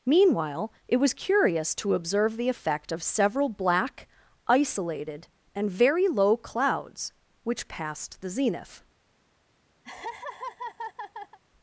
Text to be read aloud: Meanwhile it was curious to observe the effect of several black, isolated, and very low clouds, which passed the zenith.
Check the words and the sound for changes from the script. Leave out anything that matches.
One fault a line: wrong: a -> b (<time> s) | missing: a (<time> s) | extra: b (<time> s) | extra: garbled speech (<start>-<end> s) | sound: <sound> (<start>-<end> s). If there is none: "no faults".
sound: laugh (9.8-11.4 s)